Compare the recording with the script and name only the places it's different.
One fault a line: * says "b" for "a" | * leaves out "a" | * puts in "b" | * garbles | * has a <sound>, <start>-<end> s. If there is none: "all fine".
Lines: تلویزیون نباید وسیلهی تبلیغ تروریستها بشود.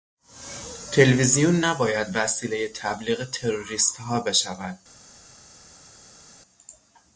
all fine